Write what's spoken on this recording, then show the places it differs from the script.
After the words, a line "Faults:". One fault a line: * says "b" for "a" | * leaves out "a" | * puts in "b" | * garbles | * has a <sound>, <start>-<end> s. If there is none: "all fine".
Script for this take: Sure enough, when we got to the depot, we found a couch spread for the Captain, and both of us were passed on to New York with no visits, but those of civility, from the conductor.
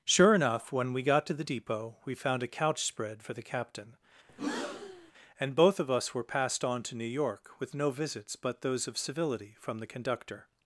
Sure enough, when we got to the depot, we found a couch spread for the Captain, and both of us were passed on to New York with no visits, but those of civility, from the conductor.
Faults:
* has a breath, 4.3-5.1 s